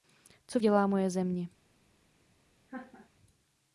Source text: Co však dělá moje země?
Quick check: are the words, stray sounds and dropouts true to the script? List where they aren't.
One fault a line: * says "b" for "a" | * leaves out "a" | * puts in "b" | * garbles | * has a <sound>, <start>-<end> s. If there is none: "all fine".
* leaves out "však"
* has a laugh, 2.7-3.1 s